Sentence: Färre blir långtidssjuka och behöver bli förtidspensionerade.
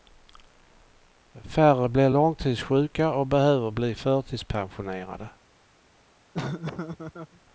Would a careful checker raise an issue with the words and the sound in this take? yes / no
yes